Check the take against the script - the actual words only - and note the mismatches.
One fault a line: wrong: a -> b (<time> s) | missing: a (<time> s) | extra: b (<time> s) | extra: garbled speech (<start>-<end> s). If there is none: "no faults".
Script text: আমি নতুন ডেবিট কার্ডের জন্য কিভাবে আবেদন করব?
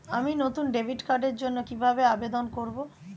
no faults